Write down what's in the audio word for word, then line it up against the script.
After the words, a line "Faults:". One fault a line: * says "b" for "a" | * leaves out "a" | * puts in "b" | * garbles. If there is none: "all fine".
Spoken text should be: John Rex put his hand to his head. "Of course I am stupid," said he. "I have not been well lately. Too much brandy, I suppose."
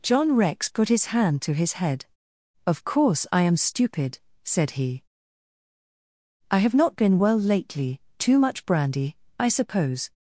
John Rex put his hand to his head. "Of course I am stupid," said he. "I have not been well lately. Too much brandy, I suppose."
Faults:
all fine